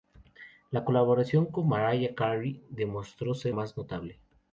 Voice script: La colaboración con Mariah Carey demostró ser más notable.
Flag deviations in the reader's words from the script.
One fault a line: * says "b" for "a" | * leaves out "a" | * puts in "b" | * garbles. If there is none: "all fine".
all fine